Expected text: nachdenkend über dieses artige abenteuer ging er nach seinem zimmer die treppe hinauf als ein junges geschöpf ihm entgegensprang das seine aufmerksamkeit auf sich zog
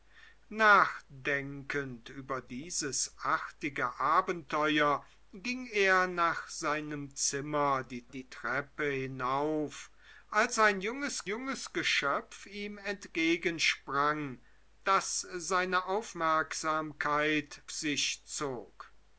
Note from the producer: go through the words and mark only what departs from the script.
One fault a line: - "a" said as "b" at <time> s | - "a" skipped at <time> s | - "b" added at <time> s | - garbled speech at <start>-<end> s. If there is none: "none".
- "die" added at 8.1 s
- "junges" added at 11.2 s
- "auf" skipped at 17.6 s